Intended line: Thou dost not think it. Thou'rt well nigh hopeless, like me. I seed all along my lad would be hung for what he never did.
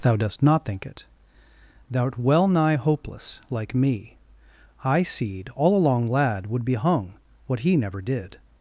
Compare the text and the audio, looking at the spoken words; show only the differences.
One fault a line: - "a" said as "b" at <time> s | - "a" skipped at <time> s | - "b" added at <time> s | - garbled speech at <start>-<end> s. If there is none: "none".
- "my" skipped at 6.1 s
- "for" skipped at 7.1 s